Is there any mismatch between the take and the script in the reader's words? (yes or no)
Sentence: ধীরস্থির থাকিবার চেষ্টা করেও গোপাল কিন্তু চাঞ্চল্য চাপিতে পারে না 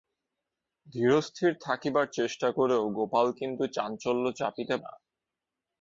yes